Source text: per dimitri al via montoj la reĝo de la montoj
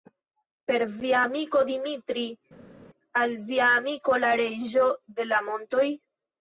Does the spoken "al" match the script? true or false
true